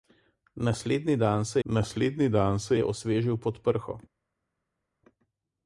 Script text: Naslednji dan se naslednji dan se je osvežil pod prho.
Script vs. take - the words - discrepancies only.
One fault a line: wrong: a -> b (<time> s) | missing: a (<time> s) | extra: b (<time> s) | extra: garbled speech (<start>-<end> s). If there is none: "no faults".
no faults